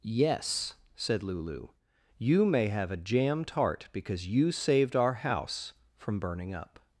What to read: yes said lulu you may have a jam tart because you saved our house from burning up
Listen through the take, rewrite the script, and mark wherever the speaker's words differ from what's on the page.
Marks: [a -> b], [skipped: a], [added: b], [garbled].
yes said lulu you may have a jam tart because you saved our house from burning up